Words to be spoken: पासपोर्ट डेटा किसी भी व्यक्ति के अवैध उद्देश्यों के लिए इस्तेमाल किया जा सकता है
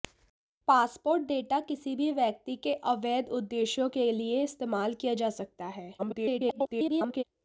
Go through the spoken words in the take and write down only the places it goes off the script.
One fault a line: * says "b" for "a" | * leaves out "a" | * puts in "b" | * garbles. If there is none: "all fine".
* garbles